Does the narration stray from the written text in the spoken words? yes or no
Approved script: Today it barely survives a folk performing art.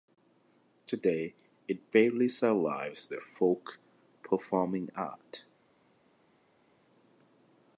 no